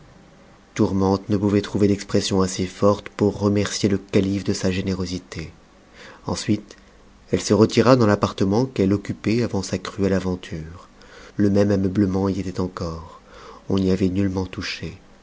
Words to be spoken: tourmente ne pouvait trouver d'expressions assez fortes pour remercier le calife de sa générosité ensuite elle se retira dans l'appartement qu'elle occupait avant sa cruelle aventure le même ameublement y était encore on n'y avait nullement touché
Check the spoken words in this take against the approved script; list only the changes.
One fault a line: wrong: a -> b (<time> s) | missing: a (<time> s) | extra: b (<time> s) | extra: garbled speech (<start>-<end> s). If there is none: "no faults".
no faults